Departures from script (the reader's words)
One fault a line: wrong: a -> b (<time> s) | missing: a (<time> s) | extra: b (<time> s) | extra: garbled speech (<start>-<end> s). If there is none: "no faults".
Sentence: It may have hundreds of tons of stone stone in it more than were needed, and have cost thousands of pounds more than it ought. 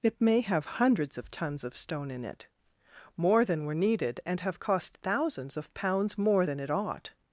missing: stone (2.1 s)